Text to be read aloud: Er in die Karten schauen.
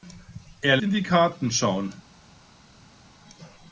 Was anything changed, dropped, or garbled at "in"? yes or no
no